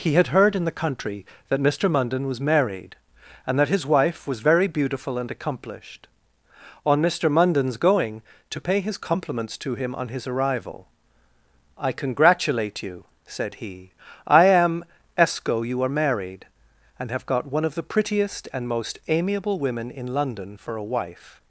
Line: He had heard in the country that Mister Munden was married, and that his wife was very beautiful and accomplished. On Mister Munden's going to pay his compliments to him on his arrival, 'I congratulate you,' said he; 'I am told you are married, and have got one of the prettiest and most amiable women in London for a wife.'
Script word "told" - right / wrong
wrong